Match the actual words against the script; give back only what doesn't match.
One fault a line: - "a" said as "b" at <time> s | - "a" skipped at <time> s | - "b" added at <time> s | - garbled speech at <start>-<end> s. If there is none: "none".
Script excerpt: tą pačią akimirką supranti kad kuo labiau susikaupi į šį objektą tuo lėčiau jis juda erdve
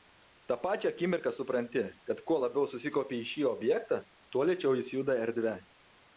none